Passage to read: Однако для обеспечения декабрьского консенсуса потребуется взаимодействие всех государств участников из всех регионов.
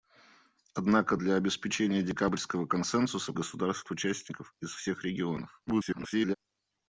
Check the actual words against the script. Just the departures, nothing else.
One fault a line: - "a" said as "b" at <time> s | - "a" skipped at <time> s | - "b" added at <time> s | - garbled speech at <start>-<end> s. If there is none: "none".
- "потребуется взаимодействие всех" skipped at 3.3 s
- garbled speech at 5.7-6.4 s